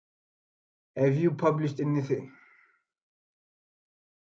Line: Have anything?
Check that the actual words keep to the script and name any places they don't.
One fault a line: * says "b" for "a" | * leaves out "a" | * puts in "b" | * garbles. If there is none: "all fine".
* puts in "you published"